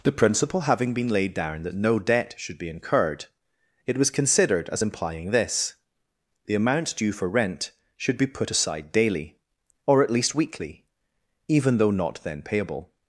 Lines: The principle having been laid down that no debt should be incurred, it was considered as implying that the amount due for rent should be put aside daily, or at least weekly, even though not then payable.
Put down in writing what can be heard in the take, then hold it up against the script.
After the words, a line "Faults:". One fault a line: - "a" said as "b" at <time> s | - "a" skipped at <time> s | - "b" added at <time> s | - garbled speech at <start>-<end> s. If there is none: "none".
The principle having been laid down that no debt should be incurred, it was considered as implying this the amount due for rent should be put aside daily, or at least weekly, even though not then payable.
Faults:
- "that" said as "this" at 5.3 s